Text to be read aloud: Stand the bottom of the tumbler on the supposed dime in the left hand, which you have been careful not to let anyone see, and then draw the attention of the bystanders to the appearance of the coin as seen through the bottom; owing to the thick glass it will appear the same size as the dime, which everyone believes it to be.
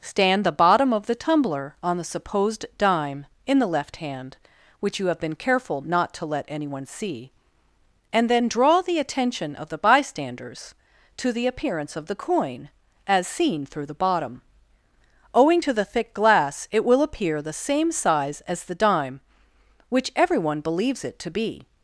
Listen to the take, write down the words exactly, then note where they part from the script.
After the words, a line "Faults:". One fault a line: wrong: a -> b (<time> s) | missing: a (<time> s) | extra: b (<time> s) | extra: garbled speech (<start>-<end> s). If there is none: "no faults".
Stand the bottom of the tumbler on the supposed dime in the left hand, which you have been careful not to let anyone see, and then draw the attention of the bystanders to the appearance of the coin as seen through the bottom; owing to the thick glass it will appear the same size as the dime, which everyone believes it to be.
Faults:
no faults